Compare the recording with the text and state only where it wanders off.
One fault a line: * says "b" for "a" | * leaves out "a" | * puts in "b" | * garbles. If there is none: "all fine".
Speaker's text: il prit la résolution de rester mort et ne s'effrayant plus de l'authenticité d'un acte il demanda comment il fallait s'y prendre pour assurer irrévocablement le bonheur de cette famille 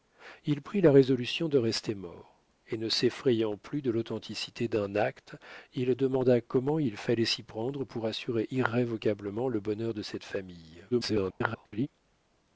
* garbles